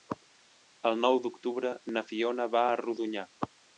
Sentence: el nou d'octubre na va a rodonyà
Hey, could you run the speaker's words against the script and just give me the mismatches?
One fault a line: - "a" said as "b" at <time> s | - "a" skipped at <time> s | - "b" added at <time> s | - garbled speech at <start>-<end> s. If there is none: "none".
- "fiona" added at 2.1 s